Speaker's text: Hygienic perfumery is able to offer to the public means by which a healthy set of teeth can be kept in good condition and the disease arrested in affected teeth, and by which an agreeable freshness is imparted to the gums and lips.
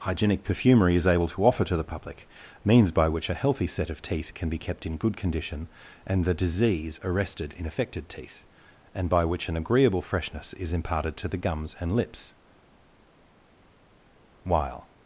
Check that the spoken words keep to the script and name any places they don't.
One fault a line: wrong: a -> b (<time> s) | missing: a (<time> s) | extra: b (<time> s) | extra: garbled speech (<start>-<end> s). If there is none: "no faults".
extra: While (14.4 s)